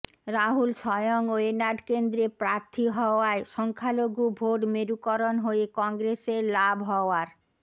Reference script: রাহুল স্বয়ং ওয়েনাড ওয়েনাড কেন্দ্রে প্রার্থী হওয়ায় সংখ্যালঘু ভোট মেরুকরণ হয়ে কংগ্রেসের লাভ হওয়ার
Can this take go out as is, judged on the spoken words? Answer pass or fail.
fail